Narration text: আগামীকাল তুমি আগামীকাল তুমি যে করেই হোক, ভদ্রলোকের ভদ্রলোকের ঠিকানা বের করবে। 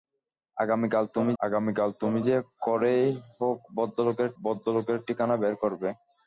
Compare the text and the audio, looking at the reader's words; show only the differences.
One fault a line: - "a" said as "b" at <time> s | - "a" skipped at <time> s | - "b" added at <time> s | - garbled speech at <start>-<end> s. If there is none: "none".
none